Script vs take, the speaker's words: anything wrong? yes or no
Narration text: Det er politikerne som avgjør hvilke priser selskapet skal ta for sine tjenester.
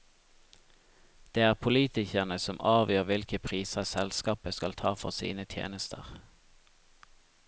no